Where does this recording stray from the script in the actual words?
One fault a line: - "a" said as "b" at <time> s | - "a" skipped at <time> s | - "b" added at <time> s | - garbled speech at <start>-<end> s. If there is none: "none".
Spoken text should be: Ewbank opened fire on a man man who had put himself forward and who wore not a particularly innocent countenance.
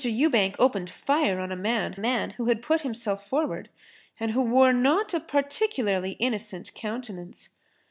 none